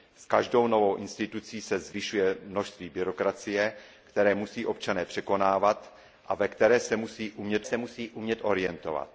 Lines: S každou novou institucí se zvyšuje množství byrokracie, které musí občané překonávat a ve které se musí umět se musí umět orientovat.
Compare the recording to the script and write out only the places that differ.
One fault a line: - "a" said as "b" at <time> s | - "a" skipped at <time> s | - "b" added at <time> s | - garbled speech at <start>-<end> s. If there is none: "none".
none